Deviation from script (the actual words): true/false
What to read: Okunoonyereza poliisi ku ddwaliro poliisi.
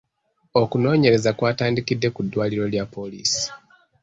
true